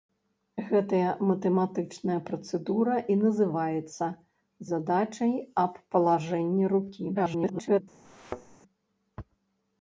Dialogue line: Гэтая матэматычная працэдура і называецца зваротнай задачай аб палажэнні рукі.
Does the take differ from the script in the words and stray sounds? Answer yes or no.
yes